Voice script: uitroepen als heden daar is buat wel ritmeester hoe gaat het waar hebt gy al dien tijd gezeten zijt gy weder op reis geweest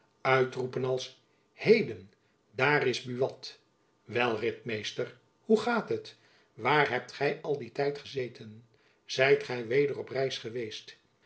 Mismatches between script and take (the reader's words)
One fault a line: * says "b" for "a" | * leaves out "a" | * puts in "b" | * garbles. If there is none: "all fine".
all fine